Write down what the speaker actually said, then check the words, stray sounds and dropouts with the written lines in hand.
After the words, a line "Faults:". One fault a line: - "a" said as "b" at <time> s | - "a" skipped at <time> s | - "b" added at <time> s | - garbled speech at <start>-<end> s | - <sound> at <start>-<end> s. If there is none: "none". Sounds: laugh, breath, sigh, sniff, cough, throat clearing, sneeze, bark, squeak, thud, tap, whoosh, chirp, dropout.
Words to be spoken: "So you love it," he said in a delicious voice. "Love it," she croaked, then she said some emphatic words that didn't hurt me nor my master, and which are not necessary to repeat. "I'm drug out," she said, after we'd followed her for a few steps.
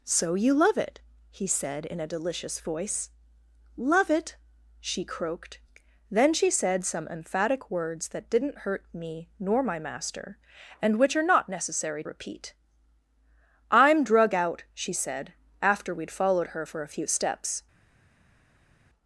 "So you love it," he said in a delicious voice. "Love it," she croaked, then she said some emphatic words that didn't hurt me nor my master, and which are not necessary repeat. "I'm drug out," she said, after we'd followed her for a few steps.
Faults:
- "to" skipped at 12.0 s